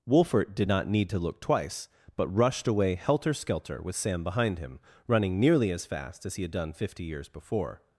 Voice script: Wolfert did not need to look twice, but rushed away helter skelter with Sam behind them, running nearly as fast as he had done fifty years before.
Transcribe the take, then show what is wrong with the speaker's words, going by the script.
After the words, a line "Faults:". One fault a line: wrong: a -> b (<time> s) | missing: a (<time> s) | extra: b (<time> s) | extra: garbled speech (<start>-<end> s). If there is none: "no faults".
Wolfert did not need to look twice, but rushed away helter skelter with Sam behind him, running nearly as fast as he had done fifty years before.
Faults:
wrong: them -> him (4.6 s)